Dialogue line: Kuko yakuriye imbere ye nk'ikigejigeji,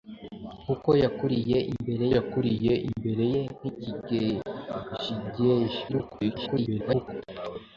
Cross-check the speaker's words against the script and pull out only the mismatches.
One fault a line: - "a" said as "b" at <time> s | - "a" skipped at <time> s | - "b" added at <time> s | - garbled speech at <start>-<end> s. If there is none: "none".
- "yakuriye imbere" added at 2.2 s
- garbled speech at 5.9-7.2 s